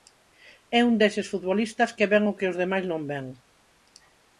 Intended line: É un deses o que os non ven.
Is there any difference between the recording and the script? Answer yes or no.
yes